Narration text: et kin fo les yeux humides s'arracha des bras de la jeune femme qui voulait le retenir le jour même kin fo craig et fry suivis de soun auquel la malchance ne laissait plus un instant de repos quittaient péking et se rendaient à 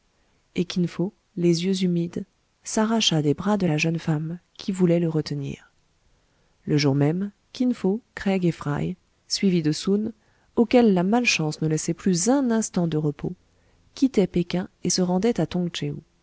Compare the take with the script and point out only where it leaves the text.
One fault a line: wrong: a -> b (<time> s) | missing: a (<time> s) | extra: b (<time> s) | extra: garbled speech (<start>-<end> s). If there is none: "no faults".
no faults